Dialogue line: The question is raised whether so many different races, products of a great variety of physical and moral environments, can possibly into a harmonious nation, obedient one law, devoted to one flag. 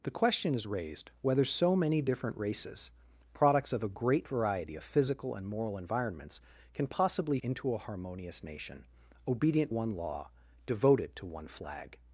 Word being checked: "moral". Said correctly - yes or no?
yes